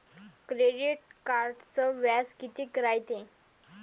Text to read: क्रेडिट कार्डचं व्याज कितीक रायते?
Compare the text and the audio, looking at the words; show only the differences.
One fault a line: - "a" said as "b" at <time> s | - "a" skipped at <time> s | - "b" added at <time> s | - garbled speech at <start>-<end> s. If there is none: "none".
none